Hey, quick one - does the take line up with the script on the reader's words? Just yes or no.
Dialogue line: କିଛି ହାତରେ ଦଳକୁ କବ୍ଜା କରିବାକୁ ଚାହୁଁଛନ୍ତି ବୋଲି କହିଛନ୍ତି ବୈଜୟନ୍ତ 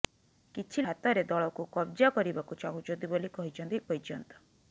yes